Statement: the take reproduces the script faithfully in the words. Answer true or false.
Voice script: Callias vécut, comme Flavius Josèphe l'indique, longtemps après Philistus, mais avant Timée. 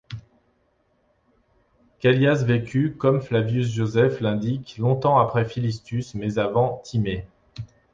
true